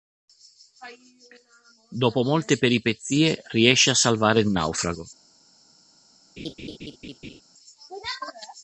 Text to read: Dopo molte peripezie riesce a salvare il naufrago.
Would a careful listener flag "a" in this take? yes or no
no